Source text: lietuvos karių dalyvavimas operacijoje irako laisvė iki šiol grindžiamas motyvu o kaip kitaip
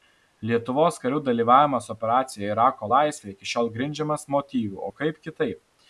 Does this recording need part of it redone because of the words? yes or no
no